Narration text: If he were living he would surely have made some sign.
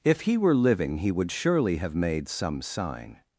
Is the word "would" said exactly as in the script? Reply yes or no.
yes